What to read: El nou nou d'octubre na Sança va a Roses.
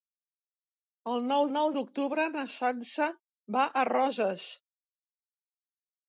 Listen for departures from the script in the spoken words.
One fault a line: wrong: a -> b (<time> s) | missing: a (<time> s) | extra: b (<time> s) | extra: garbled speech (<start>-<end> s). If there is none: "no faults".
no faults